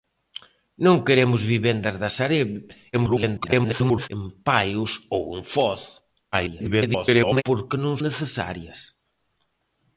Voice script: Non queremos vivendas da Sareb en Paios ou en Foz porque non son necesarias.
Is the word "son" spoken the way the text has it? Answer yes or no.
no